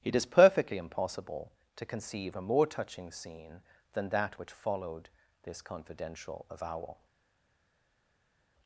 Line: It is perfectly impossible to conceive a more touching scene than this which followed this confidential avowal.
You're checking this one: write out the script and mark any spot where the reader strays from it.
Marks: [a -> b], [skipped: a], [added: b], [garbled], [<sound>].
It is perfectly impossible to conceive a more touching scene than [this -> that] which followed this confidential avowal.